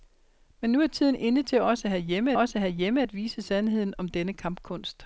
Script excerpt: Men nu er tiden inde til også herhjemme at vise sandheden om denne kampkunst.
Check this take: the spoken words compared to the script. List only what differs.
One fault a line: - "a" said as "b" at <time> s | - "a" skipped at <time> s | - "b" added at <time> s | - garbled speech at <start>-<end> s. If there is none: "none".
- "også herhjemme" added at 2.3 s